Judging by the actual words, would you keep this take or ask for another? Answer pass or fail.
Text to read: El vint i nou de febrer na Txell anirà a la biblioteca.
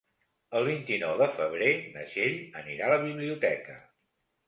pass